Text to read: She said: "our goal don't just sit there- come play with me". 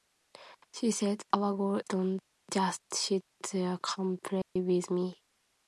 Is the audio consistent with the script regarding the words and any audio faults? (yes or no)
no